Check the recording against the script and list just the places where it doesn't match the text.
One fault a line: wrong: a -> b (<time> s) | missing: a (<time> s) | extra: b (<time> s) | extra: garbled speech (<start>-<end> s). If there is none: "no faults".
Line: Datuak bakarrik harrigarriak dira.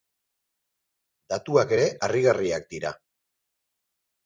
wrong: bakarrik -> ere (1.7 s)